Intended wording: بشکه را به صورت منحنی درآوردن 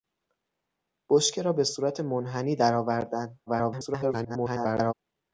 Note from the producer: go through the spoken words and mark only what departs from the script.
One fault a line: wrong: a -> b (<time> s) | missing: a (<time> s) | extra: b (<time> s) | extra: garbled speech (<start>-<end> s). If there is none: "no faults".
extra: garbled speech (3.5-4.9 s)